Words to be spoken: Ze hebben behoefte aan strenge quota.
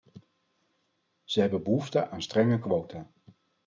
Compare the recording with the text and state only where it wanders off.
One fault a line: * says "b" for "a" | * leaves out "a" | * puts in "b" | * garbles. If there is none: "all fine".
all fine